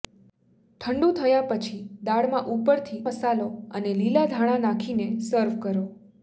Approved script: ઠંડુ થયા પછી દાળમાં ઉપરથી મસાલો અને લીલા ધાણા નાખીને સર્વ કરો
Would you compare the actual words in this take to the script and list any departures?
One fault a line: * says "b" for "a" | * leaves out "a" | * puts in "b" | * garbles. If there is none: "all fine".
all fine